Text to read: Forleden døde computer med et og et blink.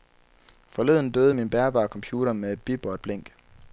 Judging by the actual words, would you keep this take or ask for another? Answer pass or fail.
fail